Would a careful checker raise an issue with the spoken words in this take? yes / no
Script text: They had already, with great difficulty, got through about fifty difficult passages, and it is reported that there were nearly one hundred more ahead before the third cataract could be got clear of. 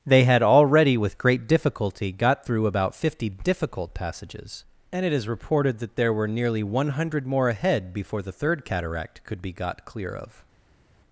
no